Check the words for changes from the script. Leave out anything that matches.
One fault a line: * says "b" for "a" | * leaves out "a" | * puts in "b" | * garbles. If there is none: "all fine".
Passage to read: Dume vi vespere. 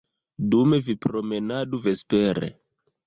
* puts in "promenadu"